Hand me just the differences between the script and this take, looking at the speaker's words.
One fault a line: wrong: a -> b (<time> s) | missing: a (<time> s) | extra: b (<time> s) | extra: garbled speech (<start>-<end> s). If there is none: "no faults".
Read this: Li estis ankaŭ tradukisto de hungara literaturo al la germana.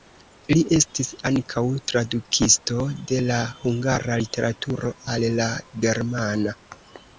extra: la (3.3 s)